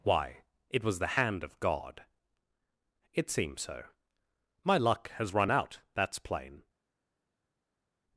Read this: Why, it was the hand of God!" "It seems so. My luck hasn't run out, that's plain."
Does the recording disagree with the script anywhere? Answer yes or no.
yes